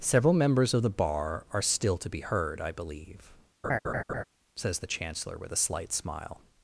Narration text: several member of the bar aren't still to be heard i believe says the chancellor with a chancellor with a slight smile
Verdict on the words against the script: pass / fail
fail